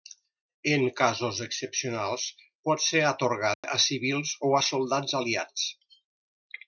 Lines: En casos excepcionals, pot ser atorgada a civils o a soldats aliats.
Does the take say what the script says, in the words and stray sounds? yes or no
no